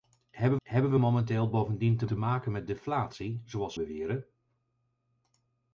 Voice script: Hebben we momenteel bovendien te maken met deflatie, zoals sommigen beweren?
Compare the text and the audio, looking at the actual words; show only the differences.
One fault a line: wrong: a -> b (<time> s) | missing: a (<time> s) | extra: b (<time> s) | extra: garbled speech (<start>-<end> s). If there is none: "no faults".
extra: hebben (0.6 s)
extra: te (2.0 s)
missing: sommigen (3.8 s)